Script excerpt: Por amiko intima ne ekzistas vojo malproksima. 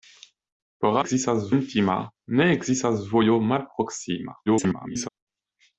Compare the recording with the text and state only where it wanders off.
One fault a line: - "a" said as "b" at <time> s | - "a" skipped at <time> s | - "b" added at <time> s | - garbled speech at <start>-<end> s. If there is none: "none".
- "amiko" said as "ekzistas" at 1.0 s
- garbled speech at 4.5-5.1 s